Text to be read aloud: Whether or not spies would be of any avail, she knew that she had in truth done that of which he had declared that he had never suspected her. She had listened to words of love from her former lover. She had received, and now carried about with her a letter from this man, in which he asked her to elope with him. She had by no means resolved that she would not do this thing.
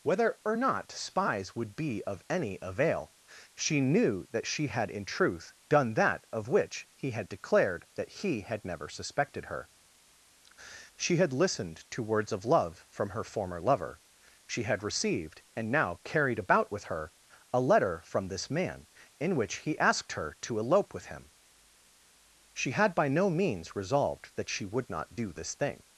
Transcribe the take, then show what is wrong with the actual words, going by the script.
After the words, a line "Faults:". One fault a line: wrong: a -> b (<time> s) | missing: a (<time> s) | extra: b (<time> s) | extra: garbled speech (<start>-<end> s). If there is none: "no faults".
Whether or not spies would be of any avail, she knew that she had in truth done that of which he had declared that he had never suspected her. She had listened to words of love from her former lover. She had received, and now carried about with her a letter from this man, in which he asked her to elope with him. She had by no means resolved that she would not do this thing.
Faults:
no faults